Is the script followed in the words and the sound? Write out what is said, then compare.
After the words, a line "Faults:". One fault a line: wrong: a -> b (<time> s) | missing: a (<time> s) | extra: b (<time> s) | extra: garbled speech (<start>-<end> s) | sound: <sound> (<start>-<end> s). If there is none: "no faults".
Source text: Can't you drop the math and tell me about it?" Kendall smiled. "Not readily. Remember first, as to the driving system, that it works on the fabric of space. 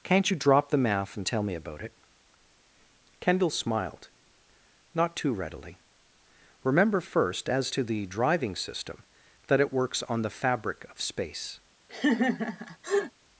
Can't you drop the math and tell me about it?" Kendall smiled. "Not too readily. Remember first, as to the driving system, that it works on the fabric of space.
Faults:
extra: too (5.2 s)
sound: laugh (11.9-13.1 s)